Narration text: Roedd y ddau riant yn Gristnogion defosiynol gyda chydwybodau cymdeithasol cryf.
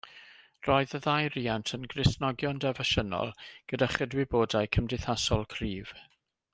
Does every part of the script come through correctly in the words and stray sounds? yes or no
yes